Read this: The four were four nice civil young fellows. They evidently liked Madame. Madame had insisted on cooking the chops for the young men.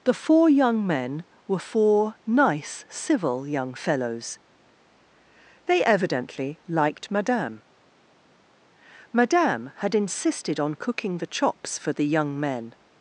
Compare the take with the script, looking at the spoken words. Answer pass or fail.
fail